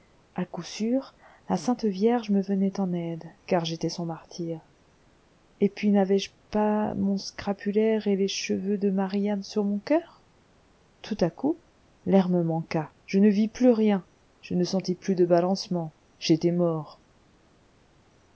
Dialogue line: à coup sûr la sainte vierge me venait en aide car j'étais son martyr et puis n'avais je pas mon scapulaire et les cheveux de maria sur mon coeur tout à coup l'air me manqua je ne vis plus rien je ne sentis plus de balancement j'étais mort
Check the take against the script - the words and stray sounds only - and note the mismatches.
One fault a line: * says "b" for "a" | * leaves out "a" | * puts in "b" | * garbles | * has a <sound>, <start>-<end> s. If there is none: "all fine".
all fine